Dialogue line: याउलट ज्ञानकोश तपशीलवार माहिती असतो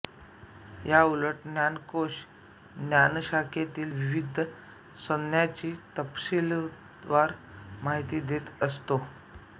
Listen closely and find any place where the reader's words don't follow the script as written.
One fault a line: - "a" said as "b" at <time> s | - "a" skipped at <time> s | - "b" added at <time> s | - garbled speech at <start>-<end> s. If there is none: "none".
- "ज्ञानशाखेतील विविध संज्ञांची" added at 2.8 s
- "देत" added at 8.3 s